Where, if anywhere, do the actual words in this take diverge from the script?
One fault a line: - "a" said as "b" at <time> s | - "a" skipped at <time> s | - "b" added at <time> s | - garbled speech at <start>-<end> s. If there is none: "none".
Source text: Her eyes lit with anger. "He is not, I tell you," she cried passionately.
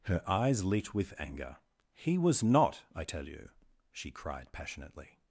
- "is" said as "was" at 2.2 s